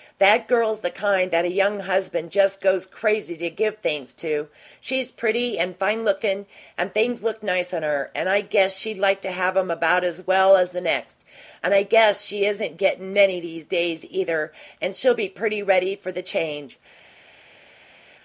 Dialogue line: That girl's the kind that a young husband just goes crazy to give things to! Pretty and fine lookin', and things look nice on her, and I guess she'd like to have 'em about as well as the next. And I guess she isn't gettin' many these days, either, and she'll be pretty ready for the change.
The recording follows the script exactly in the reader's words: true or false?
false